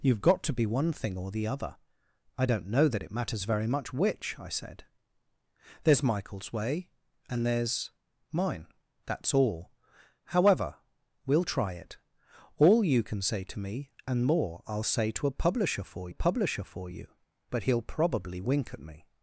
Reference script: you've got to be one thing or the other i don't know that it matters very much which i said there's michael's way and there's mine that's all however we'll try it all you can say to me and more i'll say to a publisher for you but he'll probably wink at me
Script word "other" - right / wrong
right